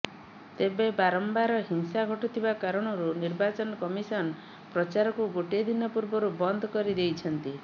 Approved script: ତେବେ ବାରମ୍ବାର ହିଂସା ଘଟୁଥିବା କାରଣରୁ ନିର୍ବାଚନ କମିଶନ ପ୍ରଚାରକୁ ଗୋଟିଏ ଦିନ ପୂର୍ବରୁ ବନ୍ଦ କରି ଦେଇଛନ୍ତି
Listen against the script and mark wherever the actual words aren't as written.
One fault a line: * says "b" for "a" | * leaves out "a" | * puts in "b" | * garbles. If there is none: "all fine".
all fine